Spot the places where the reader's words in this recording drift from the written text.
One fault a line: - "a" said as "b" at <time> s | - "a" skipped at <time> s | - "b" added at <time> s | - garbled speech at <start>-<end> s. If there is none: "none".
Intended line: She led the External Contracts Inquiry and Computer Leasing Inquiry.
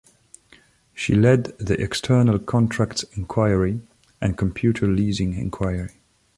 none